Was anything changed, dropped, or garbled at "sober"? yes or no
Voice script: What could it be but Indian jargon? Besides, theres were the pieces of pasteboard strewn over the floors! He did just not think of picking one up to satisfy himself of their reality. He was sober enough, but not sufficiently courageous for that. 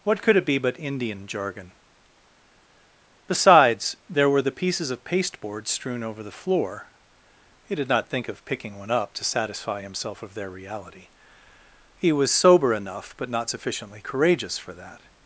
no